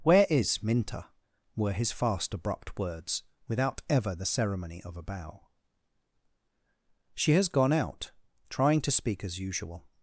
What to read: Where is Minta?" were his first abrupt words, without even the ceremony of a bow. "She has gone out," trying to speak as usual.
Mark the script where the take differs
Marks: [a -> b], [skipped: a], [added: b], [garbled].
Where is Minta?" were his [first -> fast] abrupt words, without [even -> ever] the ceremony of a bow. "She has gone out," trying to speak as usual.